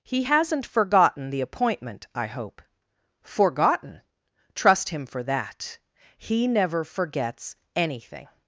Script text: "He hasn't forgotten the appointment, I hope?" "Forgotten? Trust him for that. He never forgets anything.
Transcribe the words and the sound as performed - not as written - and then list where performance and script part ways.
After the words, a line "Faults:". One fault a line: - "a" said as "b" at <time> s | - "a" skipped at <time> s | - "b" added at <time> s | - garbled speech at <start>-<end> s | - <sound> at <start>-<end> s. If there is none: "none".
"He hasn't forgotten the appointment, I hope?" "Forgotten? Trust him for that. He never forgets anything.
Faults:
none